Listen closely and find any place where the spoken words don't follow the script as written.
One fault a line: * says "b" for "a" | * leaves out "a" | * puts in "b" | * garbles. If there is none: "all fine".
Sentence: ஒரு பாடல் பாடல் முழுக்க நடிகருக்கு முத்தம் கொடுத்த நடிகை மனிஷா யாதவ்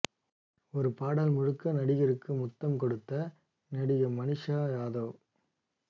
* leaves out "பாடல்"